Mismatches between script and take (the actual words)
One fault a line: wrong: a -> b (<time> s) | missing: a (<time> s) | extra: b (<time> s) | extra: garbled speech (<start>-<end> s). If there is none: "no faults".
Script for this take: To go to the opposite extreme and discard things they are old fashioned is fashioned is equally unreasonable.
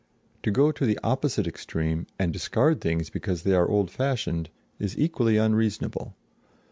extra: because (3.1 s)
missing: fashioned is (5.0 s)